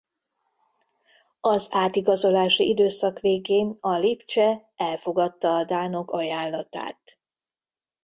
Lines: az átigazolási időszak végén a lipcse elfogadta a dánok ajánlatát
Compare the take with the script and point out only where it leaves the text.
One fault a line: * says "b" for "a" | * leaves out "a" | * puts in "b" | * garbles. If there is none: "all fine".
all fine